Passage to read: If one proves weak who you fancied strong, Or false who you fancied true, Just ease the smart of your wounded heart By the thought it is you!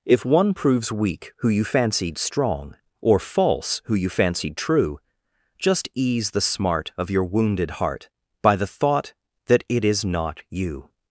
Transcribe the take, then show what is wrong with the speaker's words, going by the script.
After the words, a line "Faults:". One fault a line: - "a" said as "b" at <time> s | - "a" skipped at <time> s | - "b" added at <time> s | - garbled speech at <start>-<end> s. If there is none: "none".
If one proves weak who you fancied strong, Or false who you fancied true, Just ease the smart of your wounded heart By the thought that it is not you!
Faults:
- "that" added at 9.4 s
- "not" added at 10.0 s